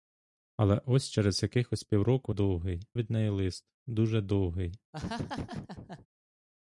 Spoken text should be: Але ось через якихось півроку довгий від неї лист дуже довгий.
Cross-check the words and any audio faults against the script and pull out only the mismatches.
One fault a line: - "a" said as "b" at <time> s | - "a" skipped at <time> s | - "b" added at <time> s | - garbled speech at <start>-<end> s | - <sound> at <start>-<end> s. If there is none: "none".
- laugh at 4.9-6.1 s